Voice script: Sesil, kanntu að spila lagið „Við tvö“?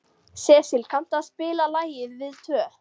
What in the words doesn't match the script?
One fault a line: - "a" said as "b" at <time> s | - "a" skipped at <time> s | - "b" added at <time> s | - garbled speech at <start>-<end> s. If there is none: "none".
none